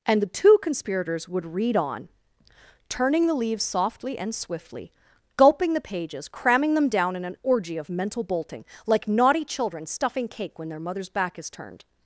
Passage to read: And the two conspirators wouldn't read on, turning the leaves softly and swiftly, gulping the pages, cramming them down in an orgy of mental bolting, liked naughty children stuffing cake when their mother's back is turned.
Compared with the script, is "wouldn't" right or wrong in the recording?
wrong